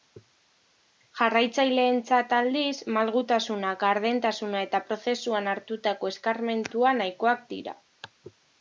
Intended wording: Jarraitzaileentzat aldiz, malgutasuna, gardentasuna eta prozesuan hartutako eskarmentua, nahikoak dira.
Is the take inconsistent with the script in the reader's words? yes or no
no